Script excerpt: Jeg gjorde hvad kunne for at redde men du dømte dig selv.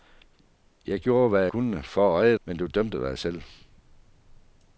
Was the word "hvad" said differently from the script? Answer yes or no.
no